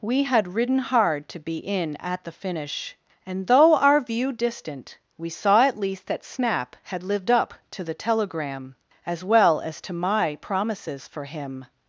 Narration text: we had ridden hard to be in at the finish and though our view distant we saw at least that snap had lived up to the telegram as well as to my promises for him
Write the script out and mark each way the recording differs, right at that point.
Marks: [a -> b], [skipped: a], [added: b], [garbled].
we had ridden hard to be in at the finish and though our view distant we saw at least that snap had lived up to the telegram as well as to my promises for him